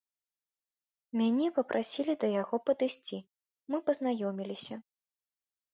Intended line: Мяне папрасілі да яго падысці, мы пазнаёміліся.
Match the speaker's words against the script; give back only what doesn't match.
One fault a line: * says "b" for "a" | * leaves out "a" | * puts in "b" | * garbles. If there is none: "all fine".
all fine